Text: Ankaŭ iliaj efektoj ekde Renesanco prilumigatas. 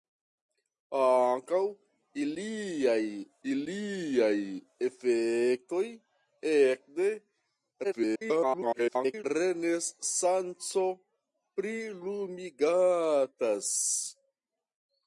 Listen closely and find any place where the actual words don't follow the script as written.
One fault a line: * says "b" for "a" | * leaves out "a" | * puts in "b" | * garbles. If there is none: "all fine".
* puts in "iliaj"
* garbles